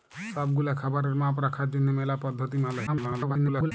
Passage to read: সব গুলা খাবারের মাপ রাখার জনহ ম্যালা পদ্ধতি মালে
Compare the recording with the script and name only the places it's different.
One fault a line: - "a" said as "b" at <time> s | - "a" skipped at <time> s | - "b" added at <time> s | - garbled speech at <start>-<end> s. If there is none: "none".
- garbled speech at 2.9-3.7 s